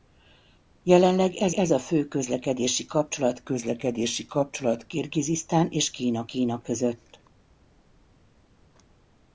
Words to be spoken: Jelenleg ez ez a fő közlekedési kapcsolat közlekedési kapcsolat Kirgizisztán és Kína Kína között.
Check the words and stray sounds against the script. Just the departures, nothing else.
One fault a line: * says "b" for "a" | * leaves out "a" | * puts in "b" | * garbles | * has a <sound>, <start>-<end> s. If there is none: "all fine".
all fine